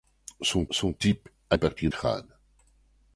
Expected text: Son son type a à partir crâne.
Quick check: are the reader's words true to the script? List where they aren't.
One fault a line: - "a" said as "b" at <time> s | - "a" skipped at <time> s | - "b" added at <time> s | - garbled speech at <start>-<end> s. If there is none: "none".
none